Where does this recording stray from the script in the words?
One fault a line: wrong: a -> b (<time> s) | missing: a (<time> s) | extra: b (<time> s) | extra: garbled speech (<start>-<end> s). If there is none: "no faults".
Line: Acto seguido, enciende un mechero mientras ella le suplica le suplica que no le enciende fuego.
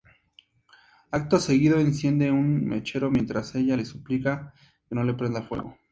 missing: le suplica (4.5 s)
wrong: enciende -> prenda (5.1 s)